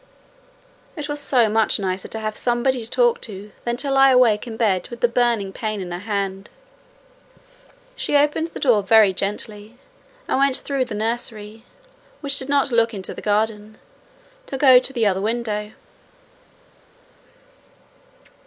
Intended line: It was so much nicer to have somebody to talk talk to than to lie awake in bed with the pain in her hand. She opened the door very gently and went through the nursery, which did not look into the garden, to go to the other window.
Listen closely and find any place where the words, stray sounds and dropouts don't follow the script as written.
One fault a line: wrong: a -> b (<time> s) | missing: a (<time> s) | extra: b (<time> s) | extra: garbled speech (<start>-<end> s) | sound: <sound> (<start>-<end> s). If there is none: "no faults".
missing: talk (3.2 s)
extra: burning (5.1 s)